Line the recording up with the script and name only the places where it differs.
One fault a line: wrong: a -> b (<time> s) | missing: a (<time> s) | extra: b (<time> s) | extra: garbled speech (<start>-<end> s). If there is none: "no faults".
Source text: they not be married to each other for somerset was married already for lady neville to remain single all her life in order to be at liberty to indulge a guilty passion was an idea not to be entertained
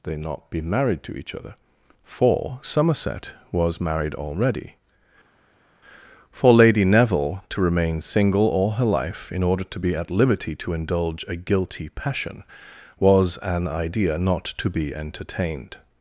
no faults